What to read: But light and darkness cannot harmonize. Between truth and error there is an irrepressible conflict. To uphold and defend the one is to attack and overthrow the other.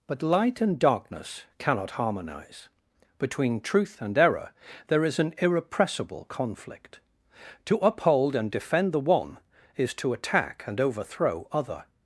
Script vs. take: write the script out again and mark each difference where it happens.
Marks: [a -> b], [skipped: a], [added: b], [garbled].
But light and darkness cannot harmonize. Between truth and error there is an irrepressible conflict. To uphold and defend the one is to attack and overthrow [skipped: the] other.